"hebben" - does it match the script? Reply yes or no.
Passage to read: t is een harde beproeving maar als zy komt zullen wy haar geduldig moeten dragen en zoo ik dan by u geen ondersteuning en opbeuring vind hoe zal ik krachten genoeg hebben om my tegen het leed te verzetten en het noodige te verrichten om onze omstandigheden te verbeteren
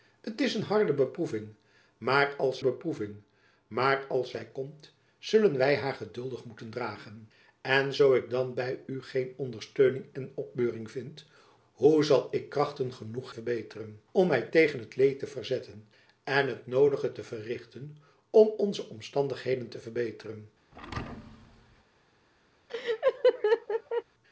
no